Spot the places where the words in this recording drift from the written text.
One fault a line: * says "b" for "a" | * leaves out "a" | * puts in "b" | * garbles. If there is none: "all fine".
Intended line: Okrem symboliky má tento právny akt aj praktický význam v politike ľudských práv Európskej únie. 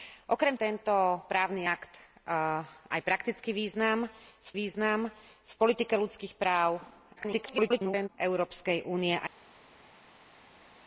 * leaves out "symboliky má"
* puts in "význam v"
* garbles